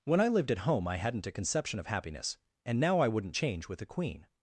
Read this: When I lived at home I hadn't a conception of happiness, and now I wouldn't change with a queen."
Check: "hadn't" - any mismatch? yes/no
no